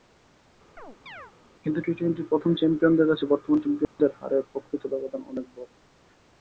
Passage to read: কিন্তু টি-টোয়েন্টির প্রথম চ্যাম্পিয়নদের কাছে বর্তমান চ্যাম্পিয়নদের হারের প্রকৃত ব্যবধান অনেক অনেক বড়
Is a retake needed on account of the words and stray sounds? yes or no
yes